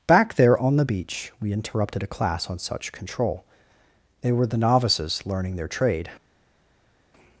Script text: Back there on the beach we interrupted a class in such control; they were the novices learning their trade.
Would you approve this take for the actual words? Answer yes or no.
no